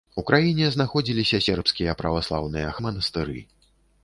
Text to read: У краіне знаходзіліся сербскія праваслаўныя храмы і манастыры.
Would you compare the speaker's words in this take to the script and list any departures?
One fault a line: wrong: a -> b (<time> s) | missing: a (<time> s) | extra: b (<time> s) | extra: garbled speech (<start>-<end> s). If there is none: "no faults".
missing: храмы (2.7 s)